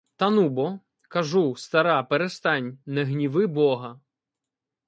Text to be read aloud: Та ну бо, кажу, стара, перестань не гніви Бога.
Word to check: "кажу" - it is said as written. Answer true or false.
true